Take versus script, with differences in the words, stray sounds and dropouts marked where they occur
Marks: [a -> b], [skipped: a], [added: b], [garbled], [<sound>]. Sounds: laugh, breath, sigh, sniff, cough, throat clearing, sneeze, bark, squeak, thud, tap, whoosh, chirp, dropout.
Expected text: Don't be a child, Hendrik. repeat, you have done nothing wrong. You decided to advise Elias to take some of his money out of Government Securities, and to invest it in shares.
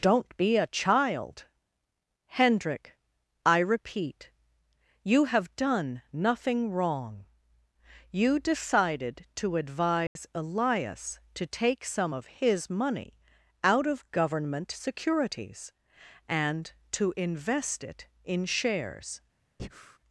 Don't be a child, Hendrik. [added: I] repeat, you have done nothing wrong. You decided to advise [dropout] Elias to take some of his money out of Government Securities, and to invest it in shares. [breath]